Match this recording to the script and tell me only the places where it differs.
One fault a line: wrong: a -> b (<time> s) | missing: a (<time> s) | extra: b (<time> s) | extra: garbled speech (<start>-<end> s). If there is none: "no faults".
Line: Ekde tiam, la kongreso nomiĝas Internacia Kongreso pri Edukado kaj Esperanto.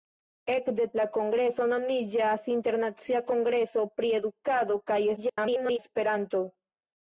missing: tiam (0.9 s)
extra: garbled speech (5.2-5.8 s)